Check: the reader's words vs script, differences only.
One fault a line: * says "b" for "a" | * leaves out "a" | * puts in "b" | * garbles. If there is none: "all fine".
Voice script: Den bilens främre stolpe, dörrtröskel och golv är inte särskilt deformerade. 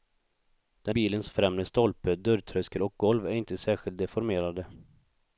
all fine